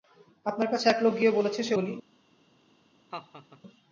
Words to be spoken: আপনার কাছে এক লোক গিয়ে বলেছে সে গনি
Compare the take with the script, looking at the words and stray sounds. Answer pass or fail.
fail